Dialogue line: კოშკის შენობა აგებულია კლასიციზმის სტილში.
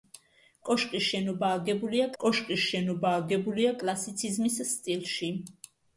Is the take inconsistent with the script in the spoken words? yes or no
yes